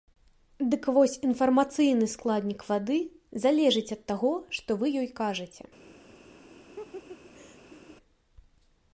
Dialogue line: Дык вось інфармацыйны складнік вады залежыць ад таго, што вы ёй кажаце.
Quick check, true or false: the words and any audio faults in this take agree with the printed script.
false